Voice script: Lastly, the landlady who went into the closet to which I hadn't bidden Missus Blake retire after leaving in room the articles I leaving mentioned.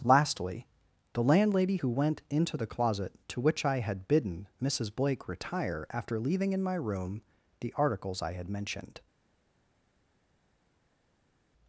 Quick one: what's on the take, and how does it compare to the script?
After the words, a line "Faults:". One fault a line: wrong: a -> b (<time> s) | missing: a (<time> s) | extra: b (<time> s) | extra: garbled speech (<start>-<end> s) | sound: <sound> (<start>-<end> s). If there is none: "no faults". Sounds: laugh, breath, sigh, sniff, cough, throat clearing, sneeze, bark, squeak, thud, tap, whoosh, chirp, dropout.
Lastly, the landlady who went into the closet to which I had bidden Missus Blake retire after leaving in my room the articles I had mentioned.
Faults:
wrong: hadn't -> had (3.8 s)
extra: my (6.6 s)
wrong: leaving -> had (8.3 s)